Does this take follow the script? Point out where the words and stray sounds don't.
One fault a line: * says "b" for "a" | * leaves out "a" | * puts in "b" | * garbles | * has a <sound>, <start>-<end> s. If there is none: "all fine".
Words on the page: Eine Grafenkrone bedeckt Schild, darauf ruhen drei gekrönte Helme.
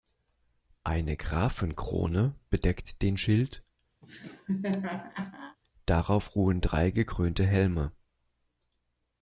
* puts in "den"
* has a laugh, 4.0-5.6 s